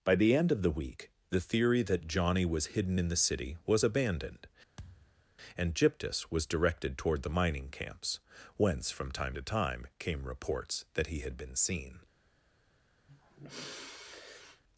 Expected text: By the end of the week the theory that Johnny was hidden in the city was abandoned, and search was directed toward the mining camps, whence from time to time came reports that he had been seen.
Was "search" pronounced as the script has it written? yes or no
no